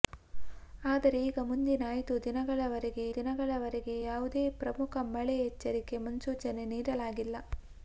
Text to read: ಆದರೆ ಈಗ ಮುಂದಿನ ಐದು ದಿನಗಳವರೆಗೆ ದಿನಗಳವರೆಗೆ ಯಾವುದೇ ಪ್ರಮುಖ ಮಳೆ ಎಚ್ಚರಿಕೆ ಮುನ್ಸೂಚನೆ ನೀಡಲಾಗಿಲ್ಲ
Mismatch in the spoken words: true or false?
false